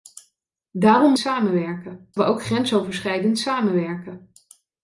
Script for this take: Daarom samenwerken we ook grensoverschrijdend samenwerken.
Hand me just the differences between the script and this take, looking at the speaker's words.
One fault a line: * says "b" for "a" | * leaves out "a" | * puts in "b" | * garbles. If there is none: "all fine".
all fine